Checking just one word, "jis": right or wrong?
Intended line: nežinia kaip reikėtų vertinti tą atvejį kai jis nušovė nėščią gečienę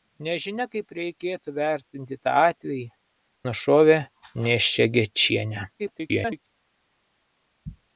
wrong